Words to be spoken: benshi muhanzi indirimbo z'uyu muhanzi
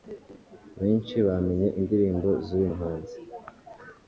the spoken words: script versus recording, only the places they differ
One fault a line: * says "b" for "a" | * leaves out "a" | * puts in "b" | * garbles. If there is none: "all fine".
* says "bamenye" for "muhanzi"